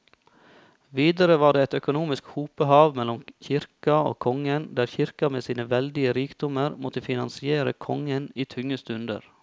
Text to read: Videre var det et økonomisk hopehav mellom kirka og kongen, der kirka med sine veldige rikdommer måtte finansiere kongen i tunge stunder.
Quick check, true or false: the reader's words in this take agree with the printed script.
true